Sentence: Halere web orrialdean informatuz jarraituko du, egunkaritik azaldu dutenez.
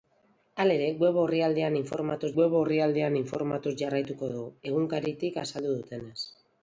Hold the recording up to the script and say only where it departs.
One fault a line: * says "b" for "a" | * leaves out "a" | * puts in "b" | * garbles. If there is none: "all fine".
* puts in "web orrialdean informatuz"